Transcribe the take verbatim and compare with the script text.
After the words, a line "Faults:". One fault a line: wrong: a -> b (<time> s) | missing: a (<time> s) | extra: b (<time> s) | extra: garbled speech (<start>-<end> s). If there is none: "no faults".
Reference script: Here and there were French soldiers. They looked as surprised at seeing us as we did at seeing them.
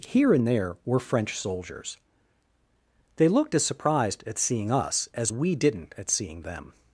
Here and there were French soldiers. They looked as surprised at seeing us as we didn't at seeing them.
Faults:
wrong: did -> didn't (5.6 s)